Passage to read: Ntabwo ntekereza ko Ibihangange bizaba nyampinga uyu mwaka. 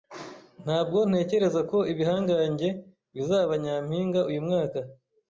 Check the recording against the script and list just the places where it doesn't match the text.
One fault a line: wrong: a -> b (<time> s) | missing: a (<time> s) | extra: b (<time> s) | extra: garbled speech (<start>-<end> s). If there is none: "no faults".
no faults